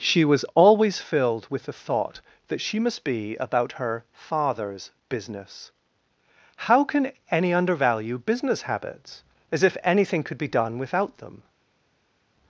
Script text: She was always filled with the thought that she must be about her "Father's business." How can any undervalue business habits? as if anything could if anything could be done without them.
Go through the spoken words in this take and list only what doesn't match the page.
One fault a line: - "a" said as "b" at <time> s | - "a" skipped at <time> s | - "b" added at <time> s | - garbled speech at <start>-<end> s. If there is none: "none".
- "if anything could" skipped at 10.4 s